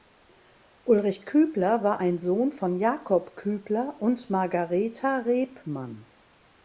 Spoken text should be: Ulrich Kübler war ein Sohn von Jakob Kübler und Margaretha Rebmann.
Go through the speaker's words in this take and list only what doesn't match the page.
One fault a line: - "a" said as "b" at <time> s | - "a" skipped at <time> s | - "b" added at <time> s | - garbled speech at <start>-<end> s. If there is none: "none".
none